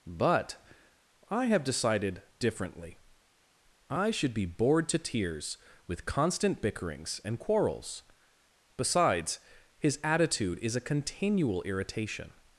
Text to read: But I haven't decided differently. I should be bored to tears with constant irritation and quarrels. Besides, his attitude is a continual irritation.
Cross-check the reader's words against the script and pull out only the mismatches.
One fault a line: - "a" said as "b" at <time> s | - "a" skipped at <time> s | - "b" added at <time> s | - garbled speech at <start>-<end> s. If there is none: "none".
- "haven't" said as "have" at 1.4 s
- "irritation" said as "bickerings" at 6.6 s